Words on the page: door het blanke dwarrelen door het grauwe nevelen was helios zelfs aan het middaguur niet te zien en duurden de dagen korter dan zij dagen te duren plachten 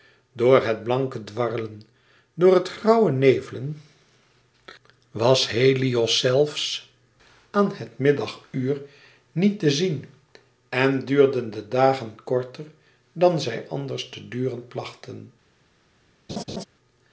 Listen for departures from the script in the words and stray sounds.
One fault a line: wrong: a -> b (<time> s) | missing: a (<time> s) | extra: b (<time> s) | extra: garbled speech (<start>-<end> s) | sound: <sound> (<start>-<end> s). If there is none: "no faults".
wrong: dagen -> anders (13.7 s)
sound: laugh (16.3-16.6 s)